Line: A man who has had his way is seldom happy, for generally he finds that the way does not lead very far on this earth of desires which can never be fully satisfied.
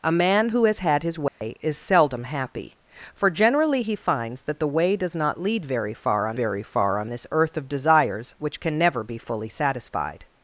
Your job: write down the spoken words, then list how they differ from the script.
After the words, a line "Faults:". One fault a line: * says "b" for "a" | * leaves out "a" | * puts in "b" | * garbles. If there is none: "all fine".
A man who has had his way is seldom happy, for generally he finds that the way does not lead very far on very far on this earth of desires which can never be fully satisfied.
Faults:
* puts in "very far on"